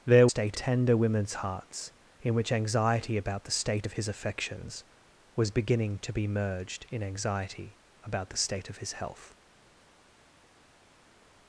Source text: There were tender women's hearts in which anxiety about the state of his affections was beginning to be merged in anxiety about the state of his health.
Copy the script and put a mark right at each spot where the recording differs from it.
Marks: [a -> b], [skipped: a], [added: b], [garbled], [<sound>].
There [were -> state] tender women's hearts in which anxiety about the state of his affections was beginning to be merged in anxiety about the state of his health.